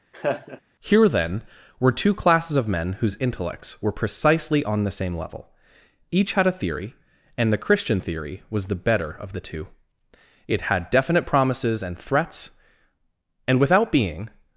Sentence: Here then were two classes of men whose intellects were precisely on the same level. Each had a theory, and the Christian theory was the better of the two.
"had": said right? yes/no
yes